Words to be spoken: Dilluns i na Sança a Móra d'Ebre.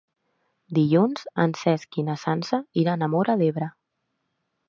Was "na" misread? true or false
false